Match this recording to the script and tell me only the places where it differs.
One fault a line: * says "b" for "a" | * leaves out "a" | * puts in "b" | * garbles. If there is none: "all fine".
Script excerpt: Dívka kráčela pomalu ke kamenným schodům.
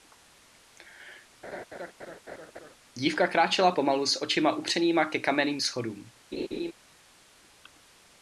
* puts in "s očima upřenýma"